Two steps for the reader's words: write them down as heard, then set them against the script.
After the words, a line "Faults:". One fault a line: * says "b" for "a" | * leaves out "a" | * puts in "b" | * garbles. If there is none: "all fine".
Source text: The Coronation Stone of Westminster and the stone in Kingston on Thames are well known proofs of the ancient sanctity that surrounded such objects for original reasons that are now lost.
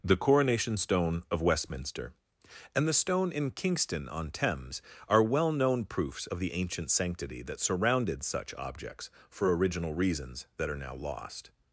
The Coronation Stone of Westminster and the stone in Kingston on Thames are well known proofs of the ancient sanctity that surrounded such objects for original reasons that are now lost.
Faults:
all fine